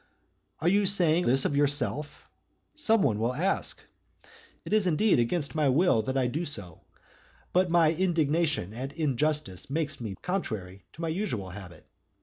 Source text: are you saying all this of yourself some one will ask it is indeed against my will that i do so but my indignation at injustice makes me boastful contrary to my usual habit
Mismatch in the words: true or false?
true